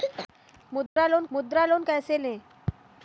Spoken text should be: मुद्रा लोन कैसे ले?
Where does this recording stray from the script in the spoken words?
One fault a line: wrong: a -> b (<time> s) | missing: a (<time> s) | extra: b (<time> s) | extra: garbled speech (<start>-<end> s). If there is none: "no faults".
extra: मुद्रा लोन (1.3 s)